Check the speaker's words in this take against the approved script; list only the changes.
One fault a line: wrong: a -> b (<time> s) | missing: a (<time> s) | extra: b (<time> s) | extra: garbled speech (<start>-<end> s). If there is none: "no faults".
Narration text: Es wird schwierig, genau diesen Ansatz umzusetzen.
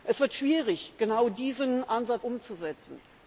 no faults